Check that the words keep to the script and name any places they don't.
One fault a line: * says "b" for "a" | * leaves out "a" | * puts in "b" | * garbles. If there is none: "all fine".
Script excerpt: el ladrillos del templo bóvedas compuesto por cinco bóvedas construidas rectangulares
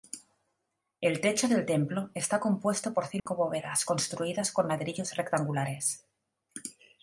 * says "techo" for "ladrillos"
* says "está" for "bóvedas"
* puts in "con ladrillos"